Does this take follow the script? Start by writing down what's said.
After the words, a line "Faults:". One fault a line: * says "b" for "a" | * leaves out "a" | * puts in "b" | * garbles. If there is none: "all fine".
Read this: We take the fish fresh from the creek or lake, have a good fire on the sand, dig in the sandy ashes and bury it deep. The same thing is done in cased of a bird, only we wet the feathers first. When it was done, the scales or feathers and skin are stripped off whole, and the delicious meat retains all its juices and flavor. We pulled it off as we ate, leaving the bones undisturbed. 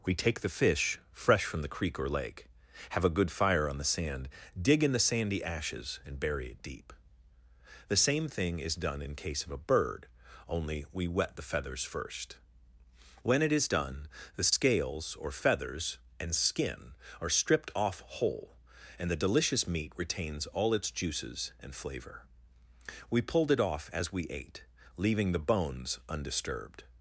We take the fish fresh from the creek or lake, have a good fire on the sand, dig in the sandy ashes and bury it deep. The same thing is done in case of a bird, only we wet the feathers first. When it is done, the scales or feathers and skin are stripped off whole, and the delicious meat retains all its juices and flavor. We pulled it off as we ate, leaving the bones undisturbed.
Faults:
* says "case" for "cased"
* says "is" for "was"